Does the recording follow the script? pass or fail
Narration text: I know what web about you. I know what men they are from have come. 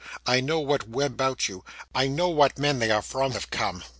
pass